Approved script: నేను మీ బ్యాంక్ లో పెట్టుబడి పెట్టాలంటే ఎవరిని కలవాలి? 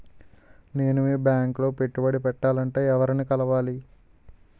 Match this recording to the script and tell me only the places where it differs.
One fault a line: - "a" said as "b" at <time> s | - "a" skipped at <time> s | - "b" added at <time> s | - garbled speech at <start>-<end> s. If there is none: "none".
none